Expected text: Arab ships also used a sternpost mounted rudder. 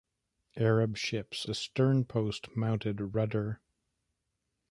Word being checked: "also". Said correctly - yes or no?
no